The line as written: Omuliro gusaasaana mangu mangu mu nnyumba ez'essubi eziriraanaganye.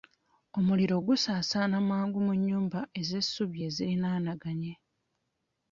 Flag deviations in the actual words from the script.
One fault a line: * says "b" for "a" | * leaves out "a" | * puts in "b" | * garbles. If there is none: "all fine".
* leaves out "mangu"